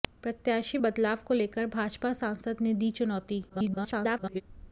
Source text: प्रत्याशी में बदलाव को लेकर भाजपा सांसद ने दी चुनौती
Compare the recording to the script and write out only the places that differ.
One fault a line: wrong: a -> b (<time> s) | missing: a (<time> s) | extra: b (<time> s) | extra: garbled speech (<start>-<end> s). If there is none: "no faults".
missing: में (0.8 s)
extra: garbled speech (3.5-4.4 s)